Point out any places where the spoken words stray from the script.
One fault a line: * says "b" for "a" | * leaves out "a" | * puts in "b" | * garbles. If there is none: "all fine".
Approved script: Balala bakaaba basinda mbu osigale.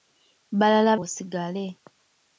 * leaves out "bakaaba basinda mbu"